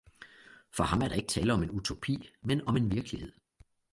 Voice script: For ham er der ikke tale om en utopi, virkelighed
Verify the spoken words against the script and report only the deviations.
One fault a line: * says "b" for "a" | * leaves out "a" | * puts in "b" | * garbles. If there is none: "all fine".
* puts in "men om en"